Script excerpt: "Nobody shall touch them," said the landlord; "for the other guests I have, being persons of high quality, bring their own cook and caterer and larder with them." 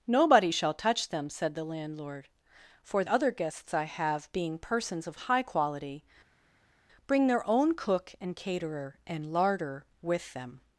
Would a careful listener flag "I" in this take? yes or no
no